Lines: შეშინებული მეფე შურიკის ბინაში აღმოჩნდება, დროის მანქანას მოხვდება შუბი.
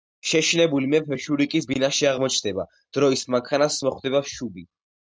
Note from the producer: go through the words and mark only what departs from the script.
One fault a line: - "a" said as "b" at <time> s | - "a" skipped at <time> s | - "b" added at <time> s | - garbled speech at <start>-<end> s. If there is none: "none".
none